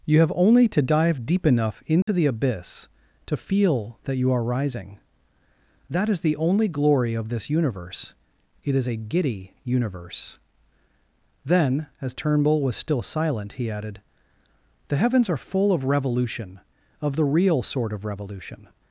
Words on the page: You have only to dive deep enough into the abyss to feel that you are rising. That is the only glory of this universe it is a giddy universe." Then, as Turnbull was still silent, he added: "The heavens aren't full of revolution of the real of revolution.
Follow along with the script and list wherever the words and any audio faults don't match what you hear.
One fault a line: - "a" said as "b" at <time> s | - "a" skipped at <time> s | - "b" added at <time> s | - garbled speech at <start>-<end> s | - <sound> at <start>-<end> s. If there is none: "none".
- dropout at 2.0-2.1 s
- "aren't" said as "are" at 15.3 s
- "sort" added at 17.6 s